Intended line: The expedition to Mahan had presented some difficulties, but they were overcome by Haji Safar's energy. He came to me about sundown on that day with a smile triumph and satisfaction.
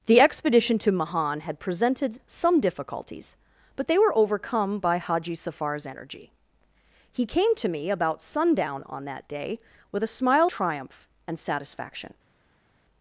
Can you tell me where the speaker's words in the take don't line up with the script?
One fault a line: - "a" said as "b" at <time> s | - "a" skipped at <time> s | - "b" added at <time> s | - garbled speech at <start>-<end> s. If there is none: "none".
none